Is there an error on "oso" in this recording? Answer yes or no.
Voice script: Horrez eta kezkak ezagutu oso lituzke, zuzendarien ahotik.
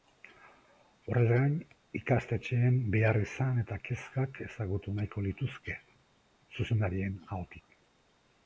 yes